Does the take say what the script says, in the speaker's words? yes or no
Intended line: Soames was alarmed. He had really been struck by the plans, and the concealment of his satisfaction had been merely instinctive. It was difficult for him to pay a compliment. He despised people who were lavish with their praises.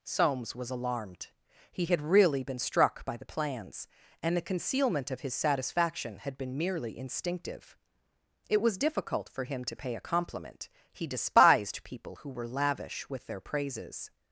yes